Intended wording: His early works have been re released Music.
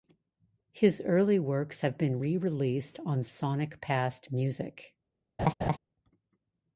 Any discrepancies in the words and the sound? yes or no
yes